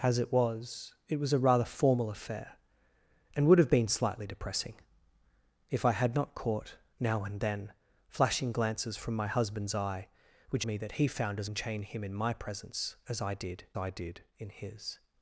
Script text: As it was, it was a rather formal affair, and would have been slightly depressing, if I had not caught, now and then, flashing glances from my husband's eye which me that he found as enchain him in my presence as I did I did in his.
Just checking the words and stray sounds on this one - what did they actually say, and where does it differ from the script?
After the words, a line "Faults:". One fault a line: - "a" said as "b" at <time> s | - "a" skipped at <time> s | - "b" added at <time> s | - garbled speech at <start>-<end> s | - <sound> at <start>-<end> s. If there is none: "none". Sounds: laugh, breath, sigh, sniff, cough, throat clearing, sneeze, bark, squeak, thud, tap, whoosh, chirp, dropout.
As it was, it was a rather formal affair, and would have been slightly depressing, if I had not caught, now and then, flashing glances from my husband's eye which me that he found as enchain him in my presence as I did I did in his.
Faults:
none